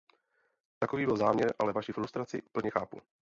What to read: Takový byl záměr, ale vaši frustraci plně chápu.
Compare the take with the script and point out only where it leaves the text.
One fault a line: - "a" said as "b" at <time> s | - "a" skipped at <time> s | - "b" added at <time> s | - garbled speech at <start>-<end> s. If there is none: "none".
none